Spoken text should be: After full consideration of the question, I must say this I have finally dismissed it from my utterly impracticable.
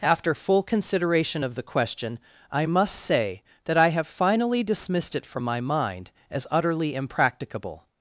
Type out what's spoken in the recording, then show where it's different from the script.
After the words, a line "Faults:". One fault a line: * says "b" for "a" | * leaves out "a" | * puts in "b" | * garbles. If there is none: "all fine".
After full consideration of the question, I must say that I have finally dismissed it from my mind as utterly impracticable.
Faults:
* says "that" for "this"
* puts in "mind as"